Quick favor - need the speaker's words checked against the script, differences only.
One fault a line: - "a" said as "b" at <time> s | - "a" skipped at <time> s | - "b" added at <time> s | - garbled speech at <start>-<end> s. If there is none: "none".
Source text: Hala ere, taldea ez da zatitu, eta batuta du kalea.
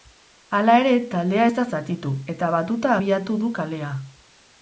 - "abiatu" added at 3.0 s